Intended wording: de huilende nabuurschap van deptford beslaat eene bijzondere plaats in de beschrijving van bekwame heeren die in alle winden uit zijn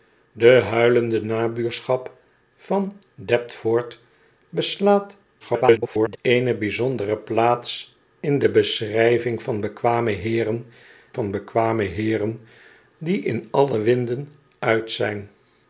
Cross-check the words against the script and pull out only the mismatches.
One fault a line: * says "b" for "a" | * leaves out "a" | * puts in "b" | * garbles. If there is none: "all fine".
* garbles
* puts in "van bekwame heeren"